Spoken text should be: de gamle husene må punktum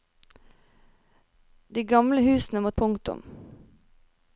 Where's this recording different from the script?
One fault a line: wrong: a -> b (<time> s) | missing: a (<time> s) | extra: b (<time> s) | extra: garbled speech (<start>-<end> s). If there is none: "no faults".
no faults